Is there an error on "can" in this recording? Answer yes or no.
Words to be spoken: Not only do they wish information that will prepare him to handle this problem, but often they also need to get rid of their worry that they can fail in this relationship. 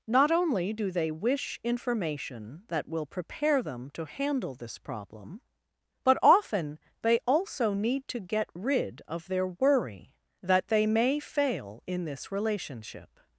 yes